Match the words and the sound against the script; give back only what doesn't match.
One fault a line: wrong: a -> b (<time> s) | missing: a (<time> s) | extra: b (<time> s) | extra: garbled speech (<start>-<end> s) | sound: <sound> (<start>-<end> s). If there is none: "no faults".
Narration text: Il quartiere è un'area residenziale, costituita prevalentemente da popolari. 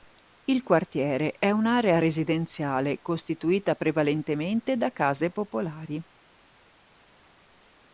extra: case (4.9 s)